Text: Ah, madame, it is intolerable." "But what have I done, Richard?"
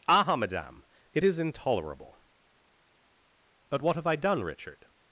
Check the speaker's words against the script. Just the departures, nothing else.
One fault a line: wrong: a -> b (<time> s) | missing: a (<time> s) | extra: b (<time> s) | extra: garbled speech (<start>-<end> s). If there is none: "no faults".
no faults